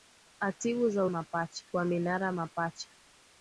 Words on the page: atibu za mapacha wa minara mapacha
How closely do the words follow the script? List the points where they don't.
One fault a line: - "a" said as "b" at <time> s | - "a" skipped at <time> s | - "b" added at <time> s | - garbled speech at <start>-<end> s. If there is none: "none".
none